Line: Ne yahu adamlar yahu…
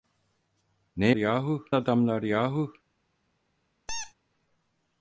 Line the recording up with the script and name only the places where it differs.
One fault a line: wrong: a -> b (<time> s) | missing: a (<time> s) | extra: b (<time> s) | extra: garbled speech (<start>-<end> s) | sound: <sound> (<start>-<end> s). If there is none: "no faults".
sound: squeak (3.9-4.1 s)